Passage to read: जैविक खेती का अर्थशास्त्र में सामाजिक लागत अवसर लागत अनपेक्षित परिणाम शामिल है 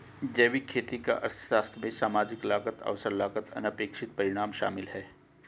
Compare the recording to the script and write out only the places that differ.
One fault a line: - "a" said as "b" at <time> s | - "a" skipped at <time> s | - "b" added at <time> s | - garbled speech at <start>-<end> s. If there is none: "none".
none